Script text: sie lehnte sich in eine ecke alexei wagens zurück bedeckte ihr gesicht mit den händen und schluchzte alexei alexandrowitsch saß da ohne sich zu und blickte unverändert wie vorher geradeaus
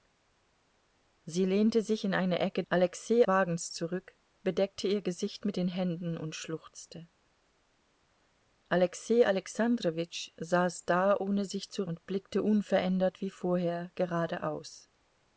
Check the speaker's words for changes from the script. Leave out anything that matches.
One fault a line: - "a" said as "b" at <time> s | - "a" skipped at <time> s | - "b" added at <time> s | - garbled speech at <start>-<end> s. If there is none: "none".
none